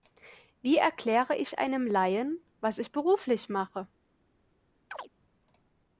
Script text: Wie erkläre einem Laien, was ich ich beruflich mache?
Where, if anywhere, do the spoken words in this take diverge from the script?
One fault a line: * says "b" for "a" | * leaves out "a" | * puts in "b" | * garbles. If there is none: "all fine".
* puts in "ich"
* leaves out "ich"